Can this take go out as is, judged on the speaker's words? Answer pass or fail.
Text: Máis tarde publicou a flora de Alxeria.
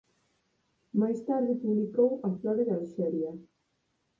pass